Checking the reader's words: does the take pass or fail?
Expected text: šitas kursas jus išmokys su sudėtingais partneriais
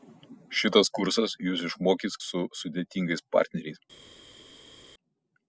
pass